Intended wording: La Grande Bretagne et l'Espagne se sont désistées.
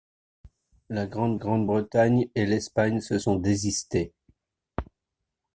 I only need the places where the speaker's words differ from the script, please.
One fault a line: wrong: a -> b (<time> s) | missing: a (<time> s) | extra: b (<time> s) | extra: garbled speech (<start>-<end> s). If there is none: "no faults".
extra: Grande (1.3 s)